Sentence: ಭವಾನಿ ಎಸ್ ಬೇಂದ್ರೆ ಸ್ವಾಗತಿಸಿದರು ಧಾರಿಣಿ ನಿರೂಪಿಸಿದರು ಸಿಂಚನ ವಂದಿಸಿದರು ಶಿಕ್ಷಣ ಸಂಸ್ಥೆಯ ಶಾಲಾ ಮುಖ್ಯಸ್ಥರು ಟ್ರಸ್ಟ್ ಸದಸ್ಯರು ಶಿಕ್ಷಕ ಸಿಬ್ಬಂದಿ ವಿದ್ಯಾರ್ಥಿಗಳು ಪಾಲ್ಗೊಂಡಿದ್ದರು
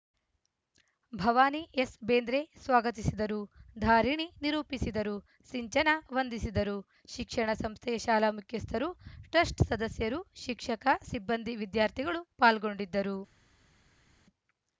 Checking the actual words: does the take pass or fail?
pass